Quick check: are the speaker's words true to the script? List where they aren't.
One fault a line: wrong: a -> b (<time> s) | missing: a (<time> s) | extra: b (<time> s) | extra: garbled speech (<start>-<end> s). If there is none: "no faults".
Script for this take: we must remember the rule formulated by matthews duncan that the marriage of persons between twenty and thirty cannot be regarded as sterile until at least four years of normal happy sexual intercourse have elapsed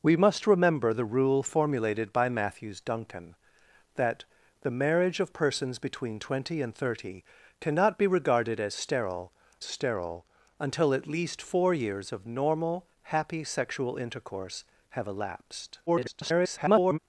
extra: sterile (9.6 s)
extra: garbled speech (15.9-17.0 s)